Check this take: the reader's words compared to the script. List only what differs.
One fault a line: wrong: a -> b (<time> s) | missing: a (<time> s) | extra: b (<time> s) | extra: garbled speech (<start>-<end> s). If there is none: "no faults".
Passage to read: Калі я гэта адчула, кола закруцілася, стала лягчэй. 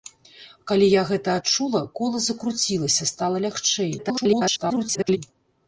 extra: garbled speech (4.0-5.2 s)